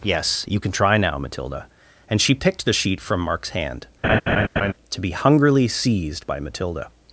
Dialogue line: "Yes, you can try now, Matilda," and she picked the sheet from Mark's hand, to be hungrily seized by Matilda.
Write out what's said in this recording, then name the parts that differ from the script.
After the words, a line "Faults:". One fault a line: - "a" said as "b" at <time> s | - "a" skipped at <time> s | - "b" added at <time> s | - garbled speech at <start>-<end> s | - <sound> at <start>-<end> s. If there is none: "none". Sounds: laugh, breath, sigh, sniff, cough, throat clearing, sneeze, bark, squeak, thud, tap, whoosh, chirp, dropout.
"Yes, you can try now, Matilda," and she picked the sheet from Mark's hand, to be hungrily seized by Matilda.
Faults:
- laugh at 4.0-4.7 s